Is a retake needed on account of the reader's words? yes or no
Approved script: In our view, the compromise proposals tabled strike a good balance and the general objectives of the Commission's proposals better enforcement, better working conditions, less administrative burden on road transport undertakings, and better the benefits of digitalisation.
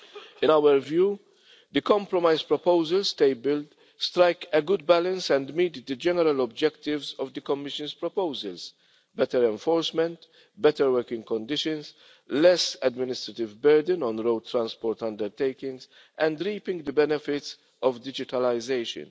yes